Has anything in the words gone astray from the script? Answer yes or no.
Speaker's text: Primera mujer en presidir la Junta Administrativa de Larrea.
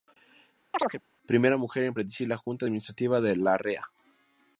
no